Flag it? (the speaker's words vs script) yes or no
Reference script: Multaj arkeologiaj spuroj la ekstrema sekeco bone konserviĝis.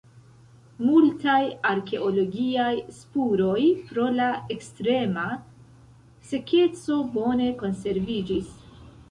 yes